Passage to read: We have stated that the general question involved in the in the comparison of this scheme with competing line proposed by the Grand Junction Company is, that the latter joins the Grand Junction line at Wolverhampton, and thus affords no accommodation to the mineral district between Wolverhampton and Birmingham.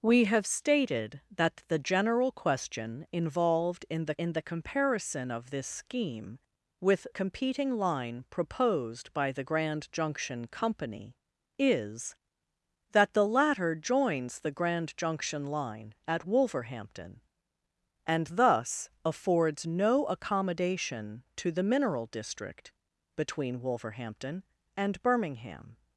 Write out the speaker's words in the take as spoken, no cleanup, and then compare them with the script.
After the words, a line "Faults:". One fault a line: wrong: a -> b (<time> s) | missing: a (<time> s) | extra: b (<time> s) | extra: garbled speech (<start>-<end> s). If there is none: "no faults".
We have stated that the general question involved in the in the comparison of this scheme with competing line proposed by the Grand Junction Company is, that the latter joins the Grand Junction line at Wolverhampton, and thus affords no accommodation to the mineral district between Wolverhampton and Birmingham.
Faults:
no faults